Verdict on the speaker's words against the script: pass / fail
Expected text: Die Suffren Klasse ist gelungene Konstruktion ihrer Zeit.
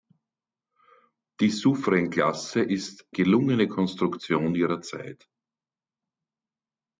pass